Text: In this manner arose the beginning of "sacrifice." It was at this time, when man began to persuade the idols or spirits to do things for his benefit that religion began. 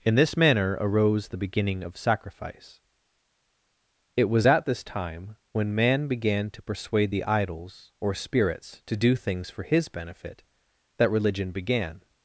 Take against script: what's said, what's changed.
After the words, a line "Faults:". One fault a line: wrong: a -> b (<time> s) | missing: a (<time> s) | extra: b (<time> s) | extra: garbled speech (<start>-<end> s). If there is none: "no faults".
In this manner arose the beginning of "sacrifice." It was at this time, when man began to persuade the idols or spirits to do things for his benefit that religion began.
Faults:
no faults